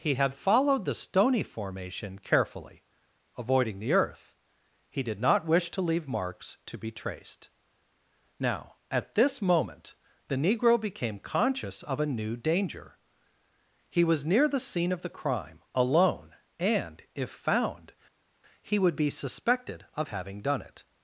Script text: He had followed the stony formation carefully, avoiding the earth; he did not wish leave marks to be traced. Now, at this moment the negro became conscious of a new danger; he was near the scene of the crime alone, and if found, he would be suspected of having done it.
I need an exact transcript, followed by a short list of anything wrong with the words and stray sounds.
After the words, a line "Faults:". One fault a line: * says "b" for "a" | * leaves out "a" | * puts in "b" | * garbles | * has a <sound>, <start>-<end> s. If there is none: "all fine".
He had followed the stony formation carefully, avoiding the earth; he did not wish to leave marks to be traced. Now, at this moment the negro became conscious of a new danger; he was near the scene of the crime alone, and if found, he would be suspected of having done it.
Faults:
* puts in "to"